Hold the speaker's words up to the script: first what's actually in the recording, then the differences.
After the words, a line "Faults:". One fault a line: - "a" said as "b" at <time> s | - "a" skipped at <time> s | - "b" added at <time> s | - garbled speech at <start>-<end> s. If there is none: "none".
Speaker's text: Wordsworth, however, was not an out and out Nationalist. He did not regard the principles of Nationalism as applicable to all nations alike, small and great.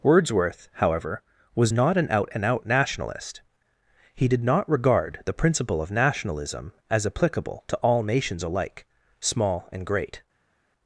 Wordsworth, however, was not an out and out Nationalist. He did not regard the principle of Nationalism as applicable to all nations alike, small and great.
Faults:
- "principles" said as "principle" at 5.3 s